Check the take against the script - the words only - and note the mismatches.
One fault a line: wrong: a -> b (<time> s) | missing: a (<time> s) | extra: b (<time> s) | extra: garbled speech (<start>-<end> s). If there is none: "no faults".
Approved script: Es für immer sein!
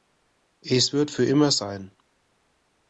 extra: wird (0.9 s)